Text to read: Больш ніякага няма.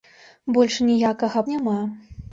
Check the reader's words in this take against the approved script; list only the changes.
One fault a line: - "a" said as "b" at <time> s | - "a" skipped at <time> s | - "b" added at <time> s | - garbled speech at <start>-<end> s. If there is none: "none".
none